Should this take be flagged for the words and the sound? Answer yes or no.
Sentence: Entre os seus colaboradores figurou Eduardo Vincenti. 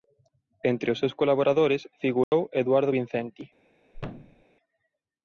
yes